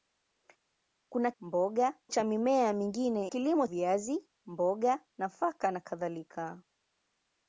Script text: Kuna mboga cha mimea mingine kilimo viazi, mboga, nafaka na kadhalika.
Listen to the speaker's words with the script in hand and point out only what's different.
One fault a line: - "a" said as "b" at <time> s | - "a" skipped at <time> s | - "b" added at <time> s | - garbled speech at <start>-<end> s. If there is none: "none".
none